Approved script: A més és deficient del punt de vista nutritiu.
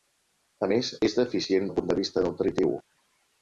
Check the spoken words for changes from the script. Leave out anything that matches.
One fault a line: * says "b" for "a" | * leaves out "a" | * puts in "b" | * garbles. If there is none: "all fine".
all fine